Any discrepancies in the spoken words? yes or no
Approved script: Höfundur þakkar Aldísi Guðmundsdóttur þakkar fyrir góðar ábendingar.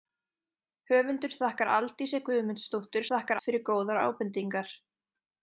no